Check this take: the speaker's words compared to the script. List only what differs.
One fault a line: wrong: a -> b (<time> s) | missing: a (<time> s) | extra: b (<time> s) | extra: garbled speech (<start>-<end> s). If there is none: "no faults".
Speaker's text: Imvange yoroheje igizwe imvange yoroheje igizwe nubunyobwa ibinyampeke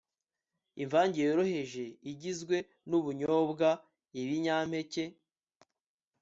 missing: imvange yoroheje igizwe (2.6 s)